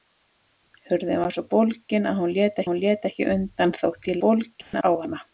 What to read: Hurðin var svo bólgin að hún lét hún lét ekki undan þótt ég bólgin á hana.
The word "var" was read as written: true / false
true